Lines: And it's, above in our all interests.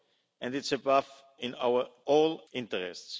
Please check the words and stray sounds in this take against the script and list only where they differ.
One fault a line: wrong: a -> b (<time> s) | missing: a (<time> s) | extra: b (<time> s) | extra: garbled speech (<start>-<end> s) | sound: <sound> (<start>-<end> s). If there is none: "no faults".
no faults